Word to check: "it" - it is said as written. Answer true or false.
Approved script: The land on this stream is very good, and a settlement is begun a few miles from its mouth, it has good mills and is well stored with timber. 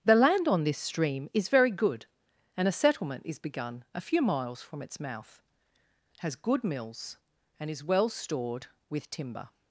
false